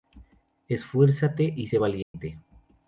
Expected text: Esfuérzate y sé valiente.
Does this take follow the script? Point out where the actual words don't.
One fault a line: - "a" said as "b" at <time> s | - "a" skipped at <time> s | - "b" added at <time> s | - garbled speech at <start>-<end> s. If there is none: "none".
none